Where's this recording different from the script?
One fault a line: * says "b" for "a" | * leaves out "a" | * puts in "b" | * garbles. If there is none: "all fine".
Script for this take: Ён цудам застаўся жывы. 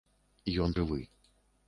* leaves out "цудам застаўся"